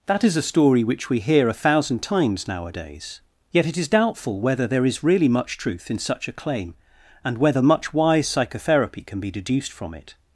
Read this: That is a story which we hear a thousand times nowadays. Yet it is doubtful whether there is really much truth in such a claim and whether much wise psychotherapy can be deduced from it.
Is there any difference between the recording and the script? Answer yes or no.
no